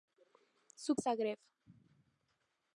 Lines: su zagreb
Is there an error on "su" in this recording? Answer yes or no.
no